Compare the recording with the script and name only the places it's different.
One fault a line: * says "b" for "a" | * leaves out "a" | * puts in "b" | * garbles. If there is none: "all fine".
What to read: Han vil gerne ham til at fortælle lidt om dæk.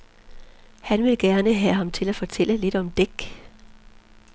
* puts in "have"